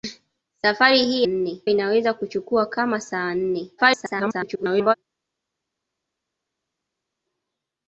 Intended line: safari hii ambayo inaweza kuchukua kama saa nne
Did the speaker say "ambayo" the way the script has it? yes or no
no